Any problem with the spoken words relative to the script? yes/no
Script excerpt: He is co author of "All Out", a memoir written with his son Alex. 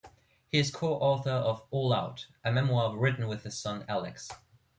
no